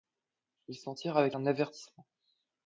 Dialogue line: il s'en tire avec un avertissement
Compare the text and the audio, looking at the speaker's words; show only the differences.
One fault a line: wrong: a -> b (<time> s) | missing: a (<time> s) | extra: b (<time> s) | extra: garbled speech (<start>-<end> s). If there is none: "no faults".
no faults